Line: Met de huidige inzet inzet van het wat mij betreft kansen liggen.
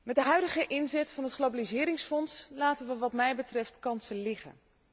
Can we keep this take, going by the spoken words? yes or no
no